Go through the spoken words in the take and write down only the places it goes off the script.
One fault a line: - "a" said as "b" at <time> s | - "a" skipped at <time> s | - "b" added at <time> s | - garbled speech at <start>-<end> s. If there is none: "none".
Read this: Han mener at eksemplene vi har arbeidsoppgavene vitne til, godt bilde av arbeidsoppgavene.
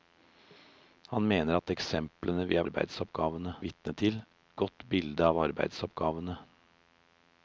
none